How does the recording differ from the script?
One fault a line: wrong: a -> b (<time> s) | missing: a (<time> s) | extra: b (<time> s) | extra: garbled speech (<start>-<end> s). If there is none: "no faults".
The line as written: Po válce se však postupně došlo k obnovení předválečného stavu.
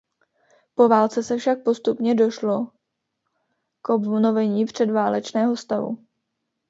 no faults